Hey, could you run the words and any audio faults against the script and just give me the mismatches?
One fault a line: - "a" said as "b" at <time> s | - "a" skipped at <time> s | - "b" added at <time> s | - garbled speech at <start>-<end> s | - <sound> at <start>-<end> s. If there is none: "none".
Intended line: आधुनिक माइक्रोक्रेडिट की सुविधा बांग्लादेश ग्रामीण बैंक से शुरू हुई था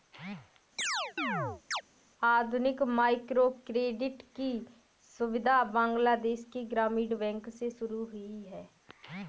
- chirp at 0.8-1.8 s
- "के" added at 6.5 s
- "था" said as "है" at 8.4 s